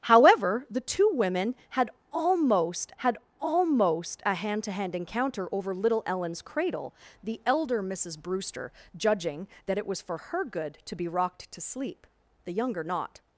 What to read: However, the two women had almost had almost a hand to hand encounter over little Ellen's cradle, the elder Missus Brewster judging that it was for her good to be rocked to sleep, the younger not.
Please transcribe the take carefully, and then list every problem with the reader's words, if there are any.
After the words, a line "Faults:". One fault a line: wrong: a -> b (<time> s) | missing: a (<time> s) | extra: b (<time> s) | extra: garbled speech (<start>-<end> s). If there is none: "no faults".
However, the two women had almost had almost a hand to hand encounter over little Ellen's cradle, the elder Missus Brewster judging that it was for her good to be rocked to sleep, the younger not.
Faults:
no faults